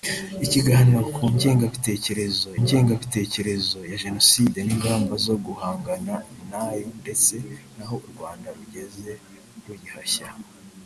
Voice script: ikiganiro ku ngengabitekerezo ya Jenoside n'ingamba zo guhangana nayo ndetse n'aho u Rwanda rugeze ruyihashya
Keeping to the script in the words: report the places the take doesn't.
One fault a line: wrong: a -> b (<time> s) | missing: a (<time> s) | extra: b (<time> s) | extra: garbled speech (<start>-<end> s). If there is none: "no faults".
extra: ngengabitekerezo (2.6 s)